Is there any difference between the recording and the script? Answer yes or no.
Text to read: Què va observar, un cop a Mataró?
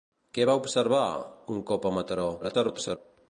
yes